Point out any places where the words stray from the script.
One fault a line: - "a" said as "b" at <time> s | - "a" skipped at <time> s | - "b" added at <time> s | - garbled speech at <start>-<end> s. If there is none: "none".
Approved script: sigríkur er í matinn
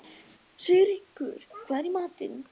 - "hvað" added at 1.7 s